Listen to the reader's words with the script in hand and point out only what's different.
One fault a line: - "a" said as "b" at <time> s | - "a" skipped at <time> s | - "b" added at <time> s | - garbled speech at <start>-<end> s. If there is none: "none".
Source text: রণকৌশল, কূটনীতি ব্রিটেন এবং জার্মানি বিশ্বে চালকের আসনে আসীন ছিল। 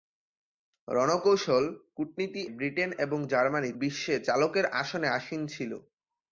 none